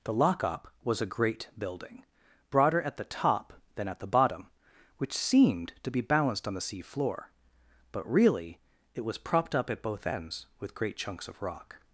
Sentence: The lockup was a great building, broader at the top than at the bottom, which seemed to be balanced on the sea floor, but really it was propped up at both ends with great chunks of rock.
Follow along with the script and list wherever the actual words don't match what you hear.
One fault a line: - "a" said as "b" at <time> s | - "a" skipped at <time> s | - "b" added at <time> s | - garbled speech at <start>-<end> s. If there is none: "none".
none